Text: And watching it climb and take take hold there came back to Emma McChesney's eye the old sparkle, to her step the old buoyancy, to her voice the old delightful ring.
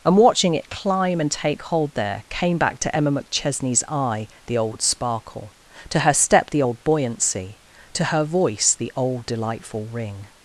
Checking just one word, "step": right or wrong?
right